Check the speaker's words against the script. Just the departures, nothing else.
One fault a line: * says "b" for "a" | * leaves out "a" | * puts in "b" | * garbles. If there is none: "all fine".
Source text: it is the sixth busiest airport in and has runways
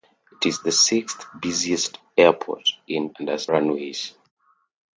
all fine